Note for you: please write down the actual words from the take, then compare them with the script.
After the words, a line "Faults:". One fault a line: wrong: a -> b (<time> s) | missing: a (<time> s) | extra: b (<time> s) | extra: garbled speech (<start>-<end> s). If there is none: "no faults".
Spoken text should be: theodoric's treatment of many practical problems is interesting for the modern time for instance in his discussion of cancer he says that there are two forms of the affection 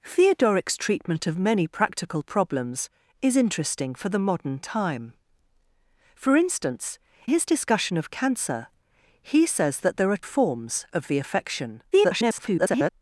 theodoric's treatment of many practical problems is interesting for the modern time for instance his discussion of cancer he says that there are forms of the affection [garbled]
Faults:
missing: in (7.0 s)
missing: two (10.2 s)
extra: garbled speech (11.9-12.9 s)